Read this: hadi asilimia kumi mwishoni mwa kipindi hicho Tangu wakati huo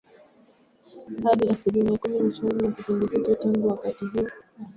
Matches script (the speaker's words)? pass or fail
pass